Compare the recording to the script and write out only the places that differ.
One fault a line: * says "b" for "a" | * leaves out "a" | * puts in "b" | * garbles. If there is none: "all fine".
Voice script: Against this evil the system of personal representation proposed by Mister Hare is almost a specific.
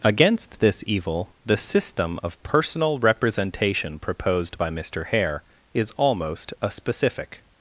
all fine